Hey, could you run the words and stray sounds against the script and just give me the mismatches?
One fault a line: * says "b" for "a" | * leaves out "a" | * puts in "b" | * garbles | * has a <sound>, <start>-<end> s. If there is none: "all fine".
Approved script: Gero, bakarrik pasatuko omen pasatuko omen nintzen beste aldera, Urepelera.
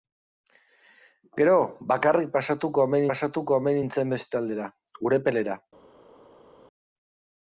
all fine